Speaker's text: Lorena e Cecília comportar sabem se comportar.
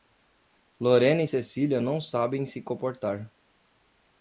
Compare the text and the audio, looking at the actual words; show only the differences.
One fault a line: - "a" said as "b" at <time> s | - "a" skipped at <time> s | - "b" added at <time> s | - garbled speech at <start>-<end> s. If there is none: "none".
- "comportar" said as "não" at 1.8 s